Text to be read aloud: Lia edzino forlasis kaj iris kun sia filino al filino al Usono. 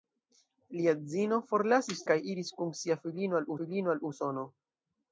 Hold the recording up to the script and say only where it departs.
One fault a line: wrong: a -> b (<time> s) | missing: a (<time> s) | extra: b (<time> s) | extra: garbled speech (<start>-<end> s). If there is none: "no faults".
no faults